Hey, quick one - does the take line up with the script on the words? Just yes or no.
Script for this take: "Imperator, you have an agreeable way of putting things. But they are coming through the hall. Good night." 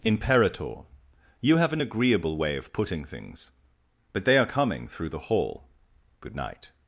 yes